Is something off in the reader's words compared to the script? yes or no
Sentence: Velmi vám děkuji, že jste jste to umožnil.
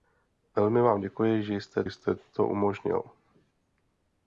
no